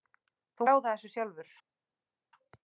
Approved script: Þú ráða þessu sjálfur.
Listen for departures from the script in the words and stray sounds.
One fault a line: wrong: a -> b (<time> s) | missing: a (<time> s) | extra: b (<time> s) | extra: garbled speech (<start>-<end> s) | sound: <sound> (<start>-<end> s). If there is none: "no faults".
no faults